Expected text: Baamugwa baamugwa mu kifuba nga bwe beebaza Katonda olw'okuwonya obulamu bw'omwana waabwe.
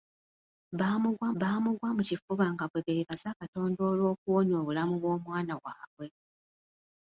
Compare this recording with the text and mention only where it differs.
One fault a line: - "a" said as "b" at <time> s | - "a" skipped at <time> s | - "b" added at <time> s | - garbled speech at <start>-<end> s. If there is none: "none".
none